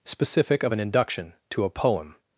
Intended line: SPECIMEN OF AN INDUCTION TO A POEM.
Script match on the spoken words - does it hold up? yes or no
no